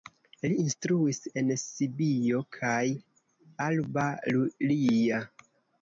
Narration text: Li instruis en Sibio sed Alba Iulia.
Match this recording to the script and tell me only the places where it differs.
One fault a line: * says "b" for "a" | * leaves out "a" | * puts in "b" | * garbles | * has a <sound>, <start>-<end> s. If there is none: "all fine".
* says "kaj" for "sed"